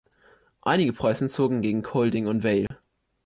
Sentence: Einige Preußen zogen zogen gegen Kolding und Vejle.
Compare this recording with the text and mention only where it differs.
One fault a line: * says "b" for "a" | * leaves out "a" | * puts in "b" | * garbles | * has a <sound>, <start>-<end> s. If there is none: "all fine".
* leaves out "zogen"
* has a dropout, 2.7-2.7 s